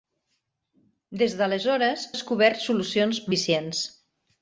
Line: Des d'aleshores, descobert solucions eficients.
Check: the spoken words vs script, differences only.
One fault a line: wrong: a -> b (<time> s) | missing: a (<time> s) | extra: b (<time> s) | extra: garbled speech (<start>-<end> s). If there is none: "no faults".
no faults